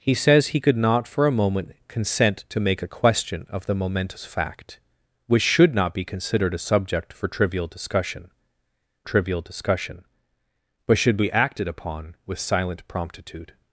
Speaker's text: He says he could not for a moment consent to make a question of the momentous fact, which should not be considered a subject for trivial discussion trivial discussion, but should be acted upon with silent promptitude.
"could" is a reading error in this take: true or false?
false